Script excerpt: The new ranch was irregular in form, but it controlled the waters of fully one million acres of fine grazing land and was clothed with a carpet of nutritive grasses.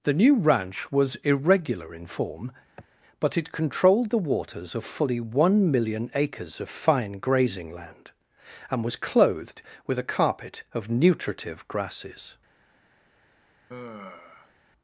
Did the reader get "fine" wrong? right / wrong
right